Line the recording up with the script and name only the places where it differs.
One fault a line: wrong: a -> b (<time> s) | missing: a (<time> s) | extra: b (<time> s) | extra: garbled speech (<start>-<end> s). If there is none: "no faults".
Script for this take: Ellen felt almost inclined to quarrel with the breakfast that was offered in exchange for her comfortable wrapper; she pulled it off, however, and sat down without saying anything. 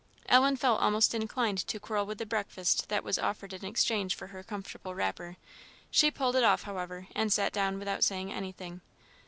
no faults